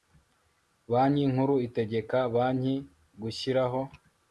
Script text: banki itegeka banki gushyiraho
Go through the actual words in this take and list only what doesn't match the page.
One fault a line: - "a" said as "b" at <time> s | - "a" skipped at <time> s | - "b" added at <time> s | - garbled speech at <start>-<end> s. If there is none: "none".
- "nkuru" added at 1.3 s